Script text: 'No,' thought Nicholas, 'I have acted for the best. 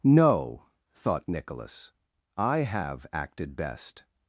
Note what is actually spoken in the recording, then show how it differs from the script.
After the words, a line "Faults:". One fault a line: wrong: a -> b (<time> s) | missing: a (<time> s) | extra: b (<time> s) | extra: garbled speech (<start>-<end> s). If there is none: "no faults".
'No,' thought Nicholas, 'I have acted best.
Faults:
missing: for the (3.5 s)